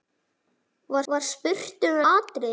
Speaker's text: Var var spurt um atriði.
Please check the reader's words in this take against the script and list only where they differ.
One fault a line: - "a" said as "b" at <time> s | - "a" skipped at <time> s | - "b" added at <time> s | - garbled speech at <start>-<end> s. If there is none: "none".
none